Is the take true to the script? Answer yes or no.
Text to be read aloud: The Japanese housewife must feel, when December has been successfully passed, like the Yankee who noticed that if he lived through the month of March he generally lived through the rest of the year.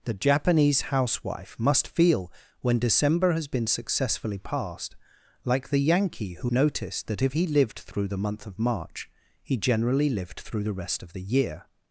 yes